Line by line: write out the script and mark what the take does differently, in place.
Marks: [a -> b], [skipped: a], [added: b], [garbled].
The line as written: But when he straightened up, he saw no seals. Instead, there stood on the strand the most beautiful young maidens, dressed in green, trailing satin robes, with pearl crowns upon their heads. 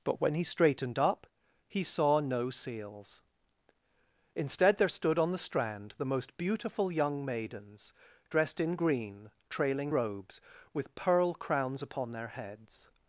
But when he straightened up, he saw no seals. Instead, there stood on the strand the most beautiful young maidens, dressed in green, trailing [skipped: satin] robes, with pearl crowns upon their heads.